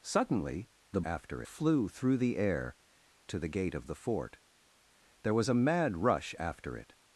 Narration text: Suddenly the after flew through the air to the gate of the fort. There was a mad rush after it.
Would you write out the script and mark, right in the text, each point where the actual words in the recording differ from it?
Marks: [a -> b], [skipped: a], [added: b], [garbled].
Suddenly the after flew through the air to the gate of the fort. There was a mad rush after it.